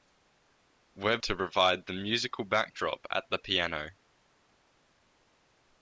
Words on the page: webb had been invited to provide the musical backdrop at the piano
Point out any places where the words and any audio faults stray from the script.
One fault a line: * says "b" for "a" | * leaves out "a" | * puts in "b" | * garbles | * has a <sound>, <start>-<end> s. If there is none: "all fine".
* leaves out "had been invited"